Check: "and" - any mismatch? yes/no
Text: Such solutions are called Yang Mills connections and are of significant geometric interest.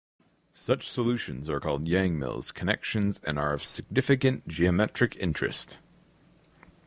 no